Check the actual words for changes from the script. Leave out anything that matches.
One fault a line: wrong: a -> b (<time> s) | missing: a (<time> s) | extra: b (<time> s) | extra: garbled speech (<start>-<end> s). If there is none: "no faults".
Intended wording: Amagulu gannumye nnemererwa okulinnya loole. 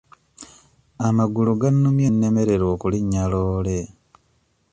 no faults